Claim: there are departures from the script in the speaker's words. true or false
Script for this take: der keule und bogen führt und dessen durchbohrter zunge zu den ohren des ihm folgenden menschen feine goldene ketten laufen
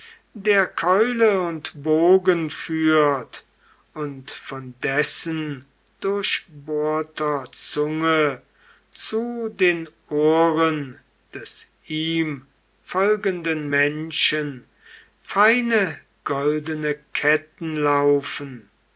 true